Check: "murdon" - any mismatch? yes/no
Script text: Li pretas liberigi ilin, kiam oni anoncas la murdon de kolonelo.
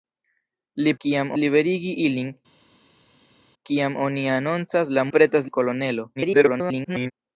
yes